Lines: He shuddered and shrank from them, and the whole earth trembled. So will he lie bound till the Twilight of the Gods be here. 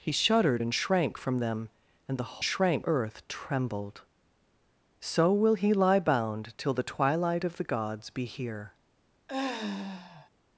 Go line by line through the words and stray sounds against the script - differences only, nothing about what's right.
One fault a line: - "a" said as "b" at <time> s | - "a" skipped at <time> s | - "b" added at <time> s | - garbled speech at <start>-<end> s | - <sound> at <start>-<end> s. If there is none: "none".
- "whole" said as "shrank" at 2.4 s
- sigh at 9.3-10.3 s